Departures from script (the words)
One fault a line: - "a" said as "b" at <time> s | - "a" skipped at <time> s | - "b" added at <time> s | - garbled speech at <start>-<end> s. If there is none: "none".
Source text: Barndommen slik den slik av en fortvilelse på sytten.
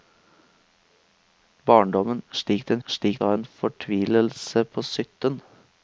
none